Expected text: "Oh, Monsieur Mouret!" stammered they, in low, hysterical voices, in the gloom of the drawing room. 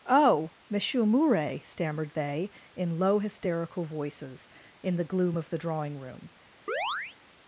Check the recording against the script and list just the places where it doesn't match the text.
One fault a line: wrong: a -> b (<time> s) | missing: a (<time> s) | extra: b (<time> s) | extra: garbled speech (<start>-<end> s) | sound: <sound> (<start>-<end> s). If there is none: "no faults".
sound: chirp (6.7-7.2 s)